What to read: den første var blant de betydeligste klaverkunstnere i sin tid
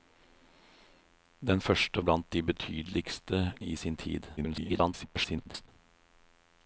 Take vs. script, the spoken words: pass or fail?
fail